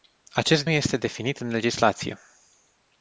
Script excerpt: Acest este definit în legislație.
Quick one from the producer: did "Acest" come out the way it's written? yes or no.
yes